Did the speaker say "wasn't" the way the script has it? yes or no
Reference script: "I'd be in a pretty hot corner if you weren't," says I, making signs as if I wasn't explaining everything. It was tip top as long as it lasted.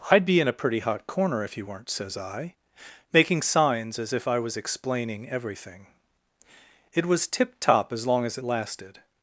no